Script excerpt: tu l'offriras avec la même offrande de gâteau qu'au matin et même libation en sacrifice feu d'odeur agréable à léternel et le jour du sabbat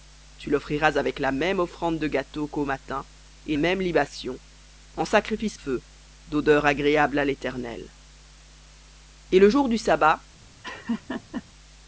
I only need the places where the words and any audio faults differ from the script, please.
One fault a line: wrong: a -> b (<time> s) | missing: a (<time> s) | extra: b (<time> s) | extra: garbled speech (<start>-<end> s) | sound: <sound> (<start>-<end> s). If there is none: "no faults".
sound: laugh (10.6-11.4 s)